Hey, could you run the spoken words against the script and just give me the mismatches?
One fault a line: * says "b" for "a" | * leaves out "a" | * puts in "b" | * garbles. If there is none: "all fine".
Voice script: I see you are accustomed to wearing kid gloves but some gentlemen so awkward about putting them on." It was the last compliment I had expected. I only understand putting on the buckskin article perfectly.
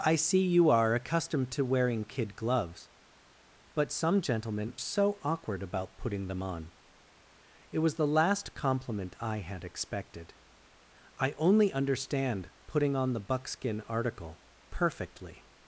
all fine